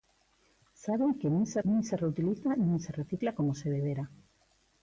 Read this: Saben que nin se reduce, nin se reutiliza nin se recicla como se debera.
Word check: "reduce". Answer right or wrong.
wrong